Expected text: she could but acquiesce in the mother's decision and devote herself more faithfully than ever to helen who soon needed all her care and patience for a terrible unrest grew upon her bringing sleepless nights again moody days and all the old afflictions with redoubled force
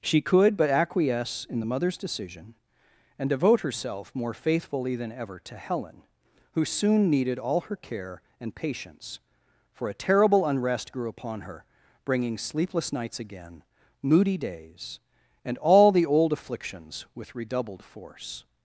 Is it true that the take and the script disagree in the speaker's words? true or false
false